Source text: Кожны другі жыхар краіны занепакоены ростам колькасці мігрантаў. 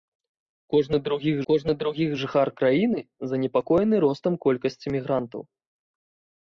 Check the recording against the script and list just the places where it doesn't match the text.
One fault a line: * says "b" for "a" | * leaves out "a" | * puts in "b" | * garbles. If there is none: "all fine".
* puts in "кожны другі"